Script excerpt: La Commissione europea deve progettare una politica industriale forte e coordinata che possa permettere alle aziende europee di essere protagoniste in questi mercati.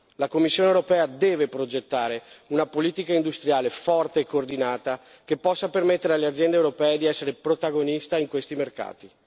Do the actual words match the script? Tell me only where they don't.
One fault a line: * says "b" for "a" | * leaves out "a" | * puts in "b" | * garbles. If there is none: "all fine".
all fine